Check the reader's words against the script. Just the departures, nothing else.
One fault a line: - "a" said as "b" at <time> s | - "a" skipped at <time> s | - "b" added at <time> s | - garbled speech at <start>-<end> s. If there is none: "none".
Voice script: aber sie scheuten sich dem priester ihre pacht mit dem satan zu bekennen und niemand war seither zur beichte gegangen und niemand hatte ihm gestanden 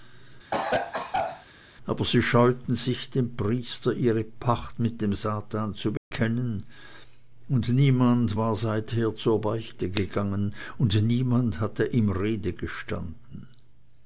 - "rede" added at 12.1 s